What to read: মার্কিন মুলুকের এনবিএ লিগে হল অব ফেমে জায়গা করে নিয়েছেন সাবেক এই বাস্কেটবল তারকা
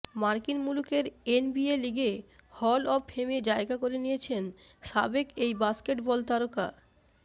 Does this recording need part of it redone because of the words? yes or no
no